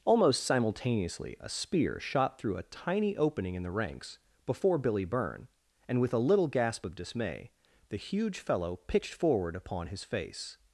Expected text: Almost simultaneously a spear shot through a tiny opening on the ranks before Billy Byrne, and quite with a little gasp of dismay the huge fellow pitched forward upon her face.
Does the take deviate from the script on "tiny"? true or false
false